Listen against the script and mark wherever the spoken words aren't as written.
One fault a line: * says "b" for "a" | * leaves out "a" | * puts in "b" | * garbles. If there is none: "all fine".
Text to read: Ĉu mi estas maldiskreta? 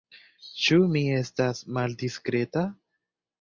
all fine